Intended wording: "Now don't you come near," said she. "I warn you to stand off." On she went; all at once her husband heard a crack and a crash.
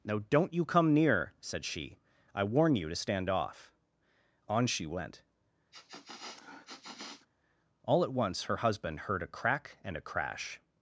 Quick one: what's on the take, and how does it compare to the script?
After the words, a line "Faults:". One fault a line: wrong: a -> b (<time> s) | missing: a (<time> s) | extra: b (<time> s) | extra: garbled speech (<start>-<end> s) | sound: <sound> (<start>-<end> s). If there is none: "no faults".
"Now don't you come near," said she. "I warn you to stand off." On she went; all at once her husband heard a crack and a crash.
Faults:
sound: sniff (5.7-7.3 s)